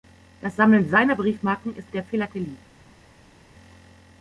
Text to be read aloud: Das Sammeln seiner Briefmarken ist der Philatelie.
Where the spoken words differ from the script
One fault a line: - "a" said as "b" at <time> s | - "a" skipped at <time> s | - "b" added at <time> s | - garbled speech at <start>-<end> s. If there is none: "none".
none